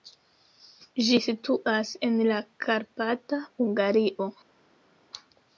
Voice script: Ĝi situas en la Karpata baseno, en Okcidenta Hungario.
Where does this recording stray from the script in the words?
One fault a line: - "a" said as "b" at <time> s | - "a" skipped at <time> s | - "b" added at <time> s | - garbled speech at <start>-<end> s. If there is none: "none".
- "baseno en Okcidenta" skipped at 3.4 s